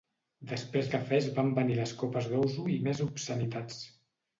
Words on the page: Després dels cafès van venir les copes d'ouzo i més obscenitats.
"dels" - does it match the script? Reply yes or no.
no